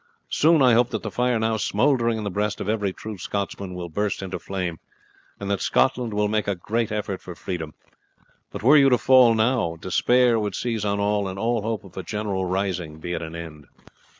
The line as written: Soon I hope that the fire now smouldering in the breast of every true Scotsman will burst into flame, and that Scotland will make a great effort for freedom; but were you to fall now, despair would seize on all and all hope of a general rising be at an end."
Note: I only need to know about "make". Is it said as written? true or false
true